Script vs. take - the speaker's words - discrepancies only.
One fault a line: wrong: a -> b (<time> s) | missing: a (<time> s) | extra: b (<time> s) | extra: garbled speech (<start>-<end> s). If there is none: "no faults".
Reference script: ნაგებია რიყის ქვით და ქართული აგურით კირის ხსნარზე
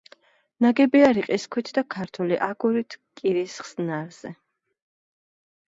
no faults